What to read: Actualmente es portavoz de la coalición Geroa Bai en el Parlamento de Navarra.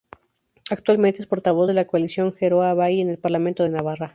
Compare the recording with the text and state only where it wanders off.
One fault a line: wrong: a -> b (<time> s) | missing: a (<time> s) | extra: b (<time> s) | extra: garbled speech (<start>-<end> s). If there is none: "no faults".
no faults